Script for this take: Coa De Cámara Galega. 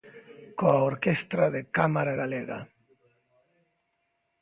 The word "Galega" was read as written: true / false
true